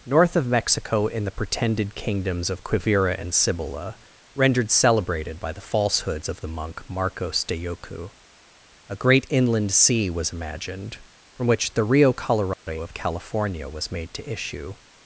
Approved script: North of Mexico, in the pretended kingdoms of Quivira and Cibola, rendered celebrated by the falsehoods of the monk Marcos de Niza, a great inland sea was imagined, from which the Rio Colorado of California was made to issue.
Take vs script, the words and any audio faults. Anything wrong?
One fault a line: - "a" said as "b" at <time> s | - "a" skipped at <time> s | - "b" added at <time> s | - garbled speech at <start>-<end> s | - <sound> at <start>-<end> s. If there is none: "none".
- "Niza" said as "Yoku" at 7.6 s
- dropout at 12.5-12.7 s